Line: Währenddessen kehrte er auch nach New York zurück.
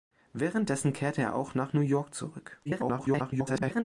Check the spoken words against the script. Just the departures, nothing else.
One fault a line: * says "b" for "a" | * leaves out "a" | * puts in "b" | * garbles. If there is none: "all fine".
* garbles